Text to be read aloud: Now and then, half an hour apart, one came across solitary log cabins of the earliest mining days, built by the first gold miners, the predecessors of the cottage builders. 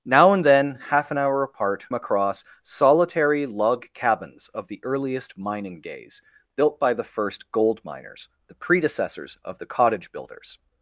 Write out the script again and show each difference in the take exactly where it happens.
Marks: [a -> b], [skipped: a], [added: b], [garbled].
Now and then, half an hour apart, [skipped: one came] across solitary log cabins of the earliest mining days, built by the first gold miners, the predecessors of the cottage builders.